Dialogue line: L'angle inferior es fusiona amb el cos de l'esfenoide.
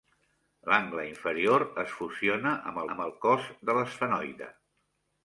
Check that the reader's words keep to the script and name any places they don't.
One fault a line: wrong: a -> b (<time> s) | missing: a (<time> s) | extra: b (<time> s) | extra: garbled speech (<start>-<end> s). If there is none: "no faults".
extra: amb (3.0 s)